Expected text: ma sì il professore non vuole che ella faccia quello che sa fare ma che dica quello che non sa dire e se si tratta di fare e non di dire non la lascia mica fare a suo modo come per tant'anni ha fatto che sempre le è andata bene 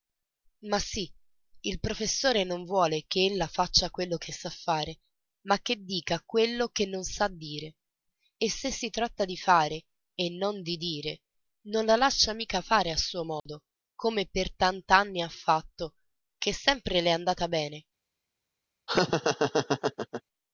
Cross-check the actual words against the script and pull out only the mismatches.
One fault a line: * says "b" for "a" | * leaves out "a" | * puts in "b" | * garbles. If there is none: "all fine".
all fine